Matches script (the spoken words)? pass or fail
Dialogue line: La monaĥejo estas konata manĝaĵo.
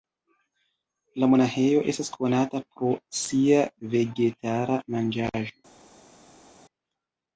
fail